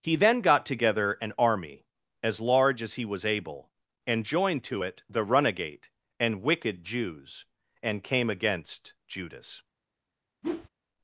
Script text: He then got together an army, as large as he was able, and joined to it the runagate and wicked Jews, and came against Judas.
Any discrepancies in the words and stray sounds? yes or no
yes